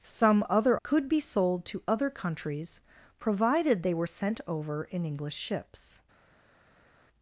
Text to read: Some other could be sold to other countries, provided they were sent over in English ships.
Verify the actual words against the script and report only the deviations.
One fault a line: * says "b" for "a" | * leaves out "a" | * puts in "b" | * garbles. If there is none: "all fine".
all fine